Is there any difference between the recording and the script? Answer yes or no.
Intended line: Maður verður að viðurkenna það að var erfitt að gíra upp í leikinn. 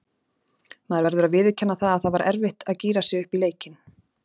yes